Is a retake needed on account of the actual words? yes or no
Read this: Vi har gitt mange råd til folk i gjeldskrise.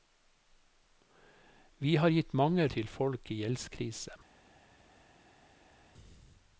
yes